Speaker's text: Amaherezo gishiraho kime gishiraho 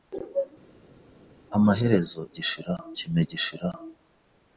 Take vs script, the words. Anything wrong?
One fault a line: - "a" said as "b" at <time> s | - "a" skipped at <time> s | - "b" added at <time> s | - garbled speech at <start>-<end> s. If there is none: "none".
none